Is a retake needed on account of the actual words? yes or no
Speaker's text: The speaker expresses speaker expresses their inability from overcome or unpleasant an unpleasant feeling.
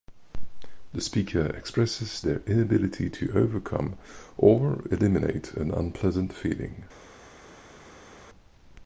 yes